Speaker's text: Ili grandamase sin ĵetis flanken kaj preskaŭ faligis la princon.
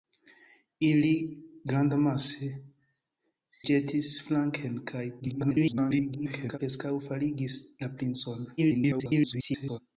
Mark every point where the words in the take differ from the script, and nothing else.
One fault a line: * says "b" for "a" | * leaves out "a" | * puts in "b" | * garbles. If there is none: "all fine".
* leaves out "sin"
* garbles
* garbles